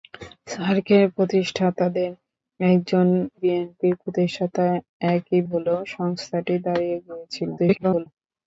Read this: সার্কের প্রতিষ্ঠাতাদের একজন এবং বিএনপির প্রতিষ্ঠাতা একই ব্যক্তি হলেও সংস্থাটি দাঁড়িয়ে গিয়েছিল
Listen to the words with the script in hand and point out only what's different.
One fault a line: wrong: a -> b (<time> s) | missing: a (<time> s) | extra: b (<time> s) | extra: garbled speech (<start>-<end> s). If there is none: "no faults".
missing: এবং (3.1 s)
missing: ব্যক্তি (5.4 s)
extra: garbled speech (7.6-8.1 s)